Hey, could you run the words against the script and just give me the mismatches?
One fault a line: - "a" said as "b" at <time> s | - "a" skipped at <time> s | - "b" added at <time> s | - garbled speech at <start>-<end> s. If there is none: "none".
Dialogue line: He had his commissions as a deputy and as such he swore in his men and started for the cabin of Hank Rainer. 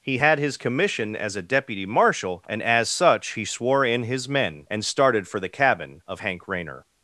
- "commissions" said as "commission" at 0.5 s
- "marshal" added at 1.8 s